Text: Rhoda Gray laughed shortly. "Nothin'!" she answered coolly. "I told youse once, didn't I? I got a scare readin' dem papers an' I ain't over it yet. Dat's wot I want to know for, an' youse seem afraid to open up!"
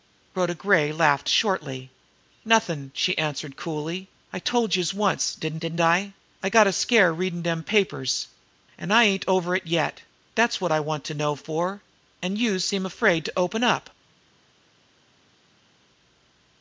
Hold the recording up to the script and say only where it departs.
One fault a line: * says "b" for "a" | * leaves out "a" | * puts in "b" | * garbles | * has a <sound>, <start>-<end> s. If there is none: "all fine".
* puts in "didn't"